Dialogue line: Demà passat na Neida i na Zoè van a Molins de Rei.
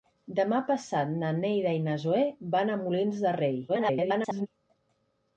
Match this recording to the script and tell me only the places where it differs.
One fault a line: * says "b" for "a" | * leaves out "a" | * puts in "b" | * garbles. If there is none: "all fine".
* garbles